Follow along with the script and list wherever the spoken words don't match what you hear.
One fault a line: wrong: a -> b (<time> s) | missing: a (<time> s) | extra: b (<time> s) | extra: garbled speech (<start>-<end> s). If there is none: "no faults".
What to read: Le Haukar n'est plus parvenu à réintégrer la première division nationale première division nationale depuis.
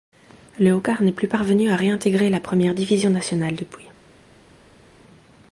missing: première division nationale (3.5 s)